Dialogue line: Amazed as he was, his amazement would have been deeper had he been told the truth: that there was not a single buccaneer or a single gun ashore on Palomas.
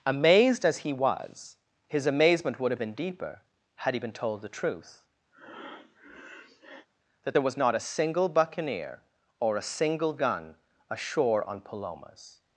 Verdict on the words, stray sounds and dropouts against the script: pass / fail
fail